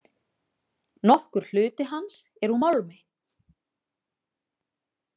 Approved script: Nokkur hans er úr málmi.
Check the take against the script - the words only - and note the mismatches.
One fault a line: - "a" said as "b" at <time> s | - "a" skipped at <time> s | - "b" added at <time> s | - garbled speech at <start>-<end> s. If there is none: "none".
- "hluti" added at 1.5 s